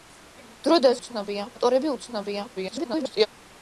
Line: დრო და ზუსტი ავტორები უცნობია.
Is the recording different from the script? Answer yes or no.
yes